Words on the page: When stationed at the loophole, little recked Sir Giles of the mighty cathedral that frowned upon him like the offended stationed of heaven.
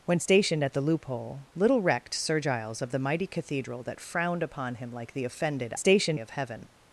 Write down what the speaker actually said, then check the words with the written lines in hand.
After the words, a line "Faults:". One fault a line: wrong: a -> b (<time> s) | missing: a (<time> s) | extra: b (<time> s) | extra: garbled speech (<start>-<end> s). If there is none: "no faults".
When stationed at the loophole, little recked Sir Giles of the mighty cathedral that frowned upon him like the offended stationed of heaven.
Faults:
no faults